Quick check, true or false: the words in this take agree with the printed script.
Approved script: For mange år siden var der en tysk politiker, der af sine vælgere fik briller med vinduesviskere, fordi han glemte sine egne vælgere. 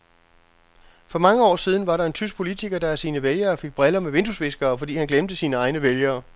true